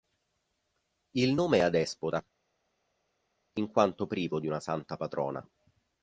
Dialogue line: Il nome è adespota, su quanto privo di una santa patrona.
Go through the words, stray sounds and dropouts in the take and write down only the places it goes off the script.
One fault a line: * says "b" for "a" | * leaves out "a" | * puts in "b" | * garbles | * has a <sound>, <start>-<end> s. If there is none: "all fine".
* says "in" for "su"